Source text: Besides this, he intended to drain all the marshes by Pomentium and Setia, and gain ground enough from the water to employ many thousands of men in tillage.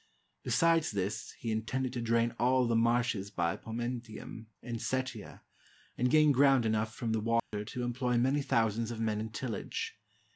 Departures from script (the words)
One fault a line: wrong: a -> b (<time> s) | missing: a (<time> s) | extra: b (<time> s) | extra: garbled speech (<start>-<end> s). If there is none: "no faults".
no faults